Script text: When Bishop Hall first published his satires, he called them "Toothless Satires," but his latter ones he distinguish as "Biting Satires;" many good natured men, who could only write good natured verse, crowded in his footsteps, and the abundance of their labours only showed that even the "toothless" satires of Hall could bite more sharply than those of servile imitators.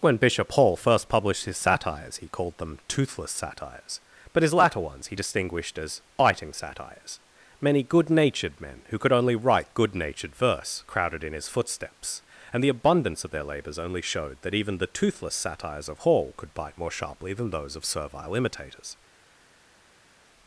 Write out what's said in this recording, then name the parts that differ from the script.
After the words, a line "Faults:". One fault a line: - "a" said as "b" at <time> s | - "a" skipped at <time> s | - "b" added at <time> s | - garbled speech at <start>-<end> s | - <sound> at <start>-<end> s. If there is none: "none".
When Bishop Hall first published his satires, he called them "Toothless Satires," but his latter ones he distinguished as "Biting Satires;" many good natured men, who could only write good natured verse, crowded in his footsteps, and the abundance of their labours only showed that even the "toothless" satires of Hall could bite more sharply than those of servile imitators.
Faults:
- "distinguish" said as "distinguished" at 5.1 s